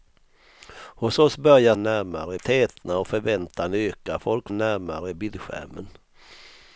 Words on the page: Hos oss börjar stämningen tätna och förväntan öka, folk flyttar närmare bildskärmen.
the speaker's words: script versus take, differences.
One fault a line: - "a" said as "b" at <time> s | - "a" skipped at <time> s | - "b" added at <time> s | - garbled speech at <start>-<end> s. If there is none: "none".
- "stämningen" said as "närmare" at 1.7 s
- "flyttar" skipped at 4.5 s